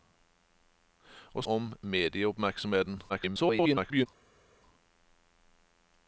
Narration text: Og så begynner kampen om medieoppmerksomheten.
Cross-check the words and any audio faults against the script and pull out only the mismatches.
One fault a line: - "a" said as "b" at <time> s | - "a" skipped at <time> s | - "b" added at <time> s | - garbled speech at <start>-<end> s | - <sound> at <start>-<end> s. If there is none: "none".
- "så begynner kampen" skipped at 1.4 s
- garbled speech at 3.1-4.1 s